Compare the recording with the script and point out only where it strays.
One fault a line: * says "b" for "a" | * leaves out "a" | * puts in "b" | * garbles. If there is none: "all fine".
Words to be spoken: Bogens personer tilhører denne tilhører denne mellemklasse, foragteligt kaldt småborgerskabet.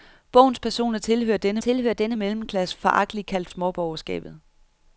all fine